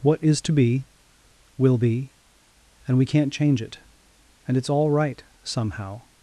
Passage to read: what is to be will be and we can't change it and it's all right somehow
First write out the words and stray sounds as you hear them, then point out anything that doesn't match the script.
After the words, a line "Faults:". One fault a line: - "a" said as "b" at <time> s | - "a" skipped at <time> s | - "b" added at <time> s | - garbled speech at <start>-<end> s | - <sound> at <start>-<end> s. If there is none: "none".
what is to be will be and we can't change it and it's all right somehow
Faults:
none